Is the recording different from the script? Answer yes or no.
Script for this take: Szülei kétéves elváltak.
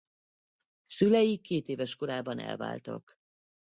yes